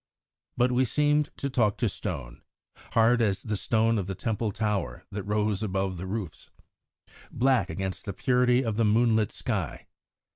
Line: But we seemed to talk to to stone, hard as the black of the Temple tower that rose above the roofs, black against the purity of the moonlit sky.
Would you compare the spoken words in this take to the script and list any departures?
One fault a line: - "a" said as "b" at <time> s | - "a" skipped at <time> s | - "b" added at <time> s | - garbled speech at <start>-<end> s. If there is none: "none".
- "to" skipped at 1.9 s
- "black" said as "stone" at 3.6 s